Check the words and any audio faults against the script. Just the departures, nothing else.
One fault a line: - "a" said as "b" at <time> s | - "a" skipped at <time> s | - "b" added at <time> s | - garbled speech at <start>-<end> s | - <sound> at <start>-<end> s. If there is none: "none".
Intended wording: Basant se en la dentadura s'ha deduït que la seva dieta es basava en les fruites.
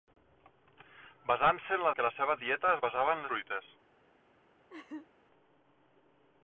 - "dentadura s'ha deduït" skipped at 1.9 s
- "les" skipped at 3.2 s
- laugh at 4.7-5.1 s